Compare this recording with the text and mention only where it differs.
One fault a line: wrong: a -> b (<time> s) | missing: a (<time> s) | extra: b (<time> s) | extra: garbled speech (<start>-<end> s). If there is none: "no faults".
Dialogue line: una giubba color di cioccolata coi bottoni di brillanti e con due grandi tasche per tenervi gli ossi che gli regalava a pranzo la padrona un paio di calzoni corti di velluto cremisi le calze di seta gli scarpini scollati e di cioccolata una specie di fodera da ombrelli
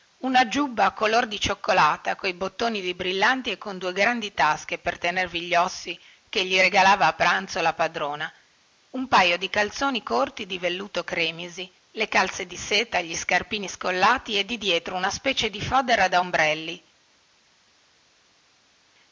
wrong: cioccolata -> dietro (14.6 s)